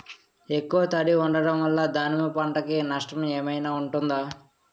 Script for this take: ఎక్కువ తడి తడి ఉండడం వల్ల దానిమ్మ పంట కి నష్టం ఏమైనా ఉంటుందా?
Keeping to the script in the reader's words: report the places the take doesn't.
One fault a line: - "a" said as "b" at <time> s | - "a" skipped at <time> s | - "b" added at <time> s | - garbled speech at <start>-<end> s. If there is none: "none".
- "తడి" skipped at 1.1 s